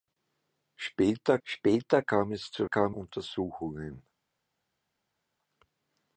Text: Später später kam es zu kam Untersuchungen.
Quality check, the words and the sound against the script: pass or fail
pass